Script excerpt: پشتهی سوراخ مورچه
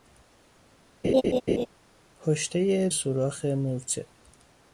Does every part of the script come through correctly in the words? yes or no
yes